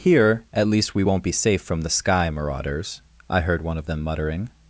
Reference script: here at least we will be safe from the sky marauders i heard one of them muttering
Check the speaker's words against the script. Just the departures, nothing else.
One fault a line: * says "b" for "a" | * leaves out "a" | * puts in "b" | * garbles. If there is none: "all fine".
* says "won't" for "will"